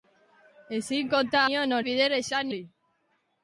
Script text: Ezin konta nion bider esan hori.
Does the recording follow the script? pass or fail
pass